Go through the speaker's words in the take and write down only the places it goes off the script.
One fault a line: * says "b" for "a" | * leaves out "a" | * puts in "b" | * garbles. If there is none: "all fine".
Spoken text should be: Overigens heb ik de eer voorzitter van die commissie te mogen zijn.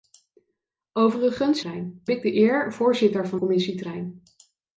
* says "zijn" for "heb"
* leaves out "die"
* leaves out "mogen"